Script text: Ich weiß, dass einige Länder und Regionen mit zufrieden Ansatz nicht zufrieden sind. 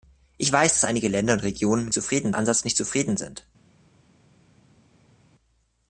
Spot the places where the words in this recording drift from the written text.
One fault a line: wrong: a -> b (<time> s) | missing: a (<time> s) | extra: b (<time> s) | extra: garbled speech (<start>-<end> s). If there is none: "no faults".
no faults